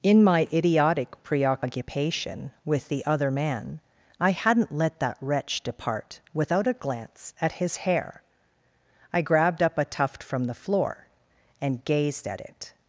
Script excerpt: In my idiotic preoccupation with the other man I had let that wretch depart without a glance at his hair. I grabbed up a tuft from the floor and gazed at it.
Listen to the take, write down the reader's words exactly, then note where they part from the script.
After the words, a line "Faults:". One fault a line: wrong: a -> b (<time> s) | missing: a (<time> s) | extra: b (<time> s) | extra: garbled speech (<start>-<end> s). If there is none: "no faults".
In my idiotic preoccupation with the other man I hadn't let that wretch depart without a glance at his hair. I grabbed up a tuft from the floor and gazed at it.
Faults:
wrong: had -> hadn't (4.3 s)